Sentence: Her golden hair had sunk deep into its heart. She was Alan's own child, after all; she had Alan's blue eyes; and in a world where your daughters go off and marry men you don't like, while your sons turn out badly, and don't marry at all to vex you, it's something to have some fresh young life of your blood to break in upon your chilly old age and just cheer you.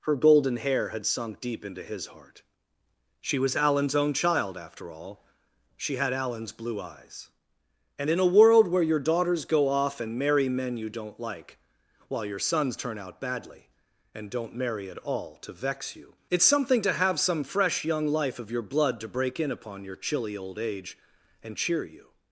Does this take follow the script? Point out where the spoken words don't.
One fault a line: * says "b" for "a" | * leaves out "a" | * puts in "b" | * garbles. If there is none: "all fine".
* says "his" for "its"
* leaves out "just"